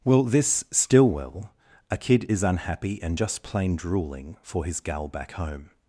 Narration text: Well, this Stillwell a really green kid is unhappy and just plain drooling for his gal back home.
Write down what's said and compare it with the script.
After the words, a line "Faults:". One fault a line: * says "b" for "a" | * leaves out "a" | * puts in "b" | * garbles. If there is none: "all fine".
Well, this Stillwell a kid is unhappy and just plain drooling for his gal back home.
Faults:
* leaves out "really green"